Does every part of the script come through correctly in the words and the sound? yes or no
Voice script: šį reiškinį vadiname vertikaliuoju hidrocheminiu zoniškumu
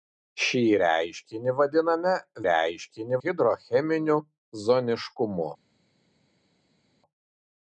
no